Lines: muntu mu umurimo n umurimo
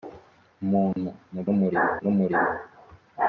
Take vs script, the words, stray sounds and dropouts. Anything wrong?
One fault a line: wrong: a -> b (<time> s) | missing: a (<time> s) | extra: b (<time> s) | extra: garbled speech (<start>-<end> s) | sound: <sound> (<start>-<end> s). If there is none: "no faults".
sound: dropout (0.9-1.0 s)